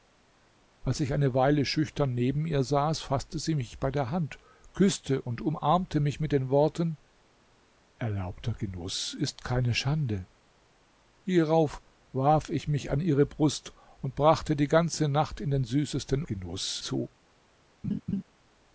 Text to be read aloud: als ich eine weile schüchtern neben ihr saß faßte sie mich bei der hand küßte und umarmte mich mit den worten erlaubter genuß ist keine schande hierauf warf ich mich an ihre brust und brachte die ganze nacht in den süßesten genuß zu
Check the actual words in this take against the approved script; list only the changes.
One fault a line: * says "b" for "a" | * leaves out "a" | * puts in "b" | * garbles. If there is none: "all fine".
all fine